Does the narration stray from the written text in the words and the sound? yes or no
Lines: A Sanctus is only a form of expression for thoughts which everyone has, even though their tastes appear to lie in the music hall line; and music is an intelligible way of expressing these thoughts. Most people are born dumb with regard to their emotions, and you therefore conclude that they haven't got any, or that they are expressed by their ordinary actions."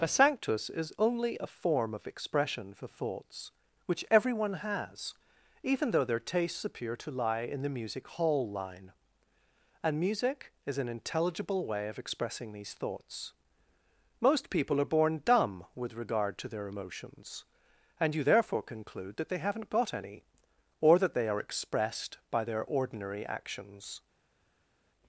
no